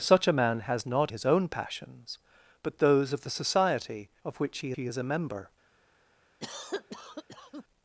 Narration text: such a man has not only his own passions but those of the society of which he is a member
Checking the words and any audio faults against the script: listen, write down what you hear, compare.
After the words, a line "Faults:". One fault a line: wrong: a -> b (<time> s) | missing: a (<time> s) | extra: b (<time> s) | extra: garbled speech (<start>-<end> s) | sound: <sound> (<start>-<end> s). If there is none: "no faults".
such a man has not his own passions but those of the society of which he he is a member
Faults:
missing: only (1.1 s)
extra: he (4.7 s)
sound: cough (6.4-7.6 s)